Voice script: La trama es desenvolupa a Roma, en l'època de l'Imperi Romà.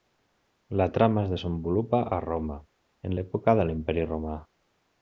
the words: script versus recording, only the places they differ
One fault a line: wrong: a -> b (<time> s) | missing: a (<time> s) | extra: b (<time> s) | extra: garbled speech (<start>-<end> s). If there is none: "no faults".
no faults